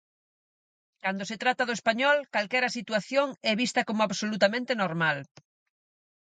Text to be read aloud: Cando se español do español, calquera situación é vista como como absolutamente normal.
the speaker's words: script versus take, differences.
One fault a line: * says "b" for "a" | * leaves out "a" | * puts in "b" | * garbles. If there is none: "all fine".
* says "trata" for "español"
* leaves out "como"